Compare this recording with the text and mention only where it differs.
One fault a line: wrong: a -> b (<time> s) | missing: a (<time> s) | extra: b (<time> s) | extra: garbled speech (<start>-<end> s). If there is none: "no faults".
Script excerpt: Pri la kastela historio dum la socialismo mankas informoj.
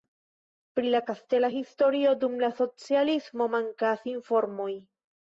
no faults